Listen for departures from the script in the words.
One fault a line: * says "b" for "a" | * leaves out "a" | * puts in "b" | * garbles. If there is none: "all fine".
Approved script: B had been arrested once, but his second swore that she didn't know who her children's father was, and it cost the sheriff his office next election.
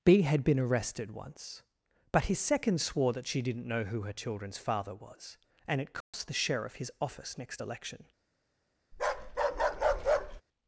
all fine